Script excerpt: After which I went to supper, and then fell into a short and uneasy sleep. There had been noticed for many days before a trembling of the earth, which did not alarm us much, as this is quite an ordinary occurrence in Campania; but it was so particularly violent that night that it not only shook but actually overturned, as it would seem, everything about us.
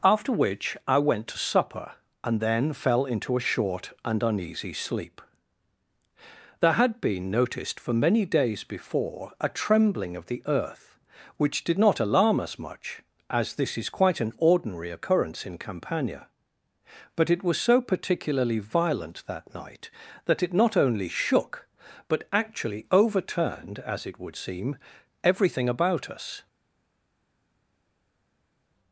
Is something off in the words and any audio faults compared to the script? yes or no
no